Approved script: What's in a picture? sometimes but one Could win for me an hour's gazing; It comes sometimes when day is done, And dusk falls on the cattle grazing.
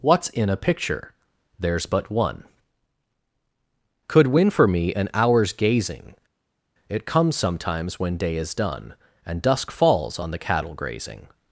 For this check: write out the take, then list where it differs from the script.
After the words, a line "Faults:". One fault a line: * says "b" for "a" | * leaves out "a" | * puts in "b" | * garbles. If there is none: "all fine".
What's in a picture? there's but one Could win for me an hour's gazing; It comes sometimes when day is done, And dusk falls on the cattle grazing.
Faults:
* says "there's" for "sometimes"